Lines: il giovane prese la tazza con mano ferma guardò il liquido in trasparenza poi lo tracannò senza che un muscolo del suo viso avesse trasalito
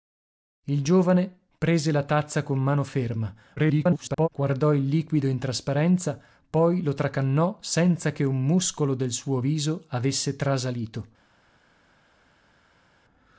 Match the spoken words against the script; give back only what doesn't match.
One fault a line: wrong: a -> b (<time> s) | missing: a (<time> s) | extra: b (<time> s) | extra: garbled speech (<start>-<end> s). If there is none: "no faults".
extra: garbled speech (3.6-4.3 s)